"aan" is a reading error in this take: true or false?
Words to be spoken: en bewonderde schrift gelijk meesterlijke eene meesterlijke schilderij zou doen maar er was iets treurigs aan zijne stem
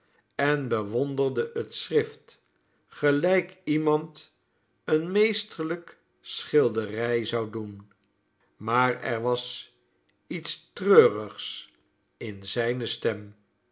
true